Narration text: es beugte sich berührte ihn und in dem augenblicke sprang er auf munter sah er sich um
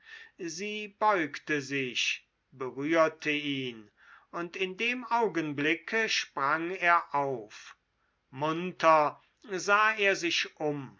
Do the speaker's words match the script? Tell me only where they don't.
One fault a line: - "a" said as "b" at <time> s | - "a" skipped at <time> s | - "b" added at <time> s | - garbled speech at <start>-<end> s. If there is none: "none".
- "es" said as "sie" at 0.4 s